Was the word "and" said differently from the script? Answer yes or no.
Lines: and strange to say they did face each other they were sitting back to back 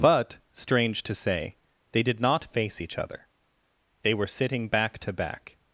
yes